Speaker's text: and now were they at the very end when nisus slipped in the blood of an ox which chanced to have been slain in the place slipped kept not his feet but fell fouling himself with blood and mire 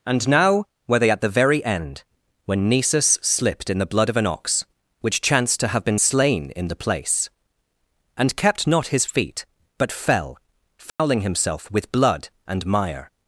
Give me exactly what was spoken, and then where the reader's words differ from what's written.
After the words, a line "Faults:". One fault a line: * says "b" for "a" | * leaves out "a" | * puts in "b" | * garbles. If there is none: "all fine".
and now were they at the very end when nisus slipped in the blood of an ox which chanced to have been slain in the place and kept not his feet but fell fouling himself with blood and mire
Faults:
* says "and" for "slipped"